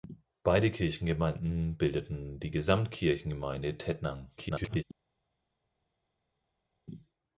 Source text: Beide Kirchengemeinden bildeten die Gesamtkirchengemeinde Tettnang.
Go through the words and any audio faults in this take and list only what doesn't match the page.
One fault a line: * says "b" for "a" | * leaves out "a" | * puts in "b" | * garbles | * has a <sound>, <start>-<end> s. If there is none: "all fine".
* garbles